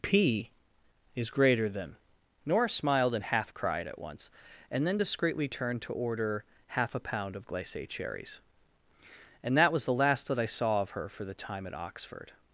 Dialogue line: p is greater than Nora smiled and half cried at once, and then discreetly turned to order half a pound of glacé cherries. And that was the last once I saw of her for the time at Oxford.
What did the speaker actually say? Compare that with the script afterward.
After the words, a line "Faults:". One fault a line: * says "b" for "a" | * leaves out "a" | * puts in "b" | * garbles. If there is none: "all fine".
p is greater than Nora smiled and half cried at once, and then discreetly turned to order half a pound of glacé cherries. And that was the last that I saw of her for the time at Oxford.
Faults:
* says "that" for "once"